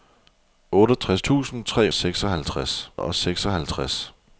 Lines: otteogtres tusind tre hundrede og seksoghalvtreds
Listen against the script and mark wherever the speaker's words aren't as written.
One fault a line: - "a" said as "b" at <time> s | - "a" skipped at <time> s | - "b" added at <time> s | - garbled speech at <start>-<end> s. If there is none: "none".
- "hundrede" said as "seksoghalvtreds" at 1.9 s